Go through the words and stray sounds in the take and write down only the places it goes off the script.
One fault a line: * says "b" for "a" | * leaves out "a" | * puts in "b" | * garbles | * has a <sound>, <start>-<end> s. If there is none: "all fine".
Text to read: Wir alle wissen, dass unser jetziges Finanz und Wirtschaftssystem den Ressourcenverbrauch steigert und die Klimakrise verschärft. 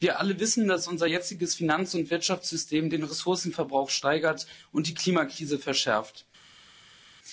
all fine